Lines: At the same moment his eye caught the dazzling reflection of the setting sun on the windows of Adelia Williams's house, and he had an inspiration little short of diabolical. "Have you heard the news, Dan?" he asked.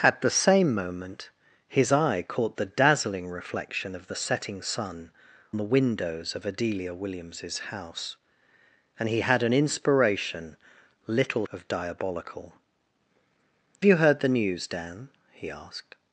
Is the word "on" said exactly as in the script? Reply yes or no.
no